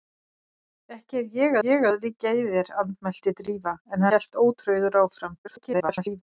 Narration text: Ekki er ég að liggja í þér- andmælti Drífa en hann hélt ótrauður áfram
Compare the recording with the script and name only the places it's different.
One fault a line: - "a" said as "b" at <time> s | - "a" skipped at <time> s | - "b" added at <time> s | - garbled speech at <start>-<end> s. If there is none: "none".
- "ég" added at 1.7 s
- "hann" skipped at 4.1 s
- garbled speech at 5.4-6.2 s